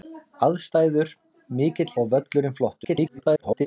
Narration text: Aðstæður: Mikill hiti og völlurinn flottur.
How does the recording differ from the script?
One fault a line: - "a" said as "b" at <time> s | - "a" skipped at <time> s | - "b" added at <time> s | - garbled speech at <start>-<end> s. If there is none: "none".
- "hiti" skipped at 1.9 s
- garbled speech at 2.8-3.7 s